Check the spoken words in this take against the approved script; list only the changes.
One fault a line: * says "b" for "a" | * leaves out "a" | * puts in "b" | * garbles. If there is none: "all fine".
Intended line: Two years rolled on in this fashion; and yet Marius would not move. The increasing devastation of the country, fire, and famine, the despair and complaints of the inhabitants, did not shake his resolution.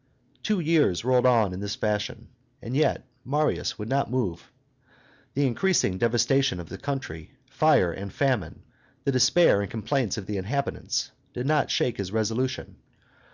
all fine